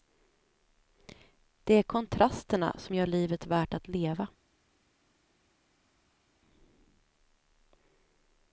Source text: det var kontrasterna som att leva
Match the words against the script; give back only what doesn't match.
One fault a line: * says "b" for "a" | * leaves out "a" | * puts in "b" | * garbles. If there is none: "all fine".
* says "är" for "var"
* puts in "gör livet värt"